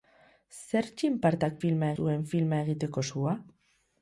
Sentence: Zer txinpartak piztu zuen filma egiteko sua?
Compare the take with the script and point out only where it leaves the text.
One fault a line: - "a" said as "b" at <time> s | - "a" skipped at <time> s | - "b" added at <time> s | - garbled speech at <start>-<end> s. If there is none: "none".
- "piztu" said as "filma" at 1.7 s